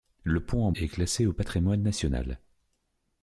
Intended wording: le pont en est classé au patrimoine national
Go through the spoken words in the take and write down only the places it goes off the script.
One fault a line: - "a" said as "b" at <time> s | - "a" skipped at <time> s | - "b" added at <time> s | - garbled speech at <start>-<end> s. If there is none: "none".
none